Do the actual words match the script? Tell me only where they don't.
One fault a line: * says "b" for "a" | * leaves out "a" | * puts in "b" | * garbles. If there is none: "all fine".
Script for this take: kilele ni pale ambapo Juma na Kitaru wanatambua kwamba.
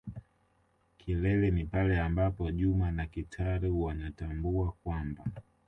all fine